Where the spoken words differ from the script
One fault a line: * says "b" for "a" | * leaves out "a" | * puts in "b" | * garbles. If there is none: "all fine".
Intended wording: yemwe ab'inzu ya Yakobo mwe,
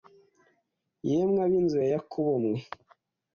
all fine